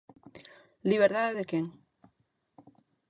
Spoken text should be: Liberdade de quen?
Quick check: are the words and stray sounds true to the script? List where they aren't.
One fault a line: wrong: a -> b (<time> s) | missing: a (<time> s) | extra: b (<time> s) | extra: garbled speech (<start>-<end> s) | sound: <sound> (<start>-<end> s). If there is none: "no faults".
no faults